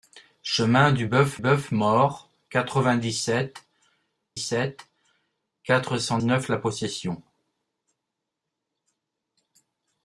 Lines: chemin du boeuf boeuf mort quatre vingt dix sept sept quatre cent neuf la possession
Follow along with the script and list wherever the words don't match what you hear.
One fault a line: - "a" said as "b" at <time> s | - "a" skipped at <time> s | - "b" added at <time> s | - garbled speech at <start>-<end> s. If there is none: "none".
none